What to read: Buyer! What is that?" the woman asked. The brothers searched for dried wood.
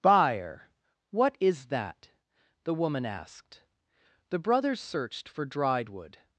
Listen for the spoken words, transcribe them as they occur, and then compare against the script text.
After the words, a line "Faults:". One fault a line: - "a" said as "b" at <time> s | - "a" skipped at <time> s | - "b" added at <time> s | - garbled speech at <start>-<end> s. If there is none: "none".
Buyer! What is that?" the woman asked. The brothers searched for dried wood.
Faults:
none